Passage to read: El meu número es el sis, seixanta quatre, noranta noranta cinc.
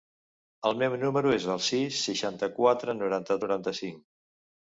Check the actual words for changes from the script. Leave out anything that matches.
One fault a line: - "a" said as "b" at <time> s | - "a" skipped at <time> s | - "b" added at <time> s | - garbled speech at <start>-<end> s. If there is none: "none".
none